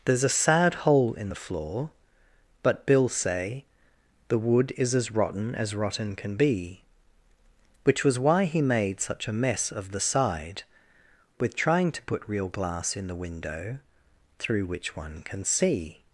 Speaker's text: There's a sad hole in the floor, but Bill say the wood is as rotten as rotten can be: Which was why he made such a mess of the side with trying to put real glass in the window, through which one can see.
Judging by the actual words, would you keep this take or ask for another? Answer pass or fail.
pass